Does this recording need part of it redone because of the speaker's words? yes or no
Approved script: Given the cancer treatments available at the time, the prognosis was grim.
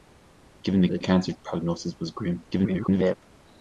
yes